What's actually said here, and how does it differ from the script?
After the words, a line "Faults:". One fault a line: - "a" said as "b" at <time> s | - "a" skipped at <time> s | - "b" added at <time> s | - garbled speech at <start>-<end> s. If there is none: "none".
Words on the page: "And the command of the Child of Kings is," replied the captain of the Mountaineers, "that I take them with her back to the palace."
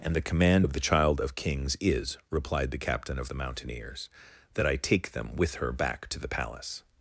"And the command of the Child of Kings is," replied the captain of the Mountaineers, "that I take them with her back to the palace."
Faults:
none